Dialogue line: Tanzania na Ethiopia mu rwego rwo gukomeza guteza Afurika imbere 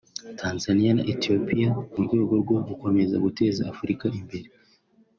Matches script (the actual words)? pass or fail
pass